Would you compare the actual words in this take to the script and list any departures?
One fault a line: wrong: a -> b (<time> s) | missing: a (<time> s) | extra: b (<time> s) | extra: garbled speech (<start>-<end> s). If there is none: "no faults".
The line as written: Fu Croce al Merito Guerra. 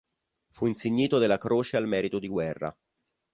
extra: insignito della (0.7 s)
extra: di (2.2 s)